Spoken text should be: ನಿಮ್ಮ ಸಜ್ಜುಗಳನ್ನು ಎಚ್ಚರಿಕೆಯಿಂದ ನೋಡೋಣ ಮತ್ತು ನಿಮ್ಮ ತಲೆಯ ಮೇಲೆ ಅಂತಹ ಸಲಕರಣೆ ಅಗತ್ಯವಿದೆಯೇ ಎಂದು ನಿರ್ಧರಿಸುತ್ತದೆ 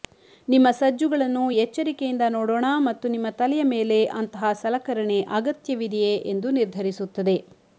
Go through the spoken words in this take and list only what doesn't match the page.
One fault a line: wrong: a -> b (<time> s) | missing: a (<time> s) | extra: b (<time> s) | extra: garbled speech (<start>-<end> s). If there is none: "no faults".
no faults